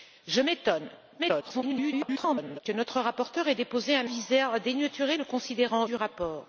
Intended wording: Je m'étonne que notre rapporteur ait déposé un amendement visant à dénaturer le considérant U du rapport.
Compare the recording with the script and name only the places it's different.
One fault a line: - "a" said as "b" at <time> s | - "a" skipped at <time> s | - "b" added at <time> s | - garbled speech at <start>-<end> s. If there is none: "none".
- garbled speech at 1.2-2.6 s
- "amendement" skipped at 4.1 s
- "U" skipped at 5.9 s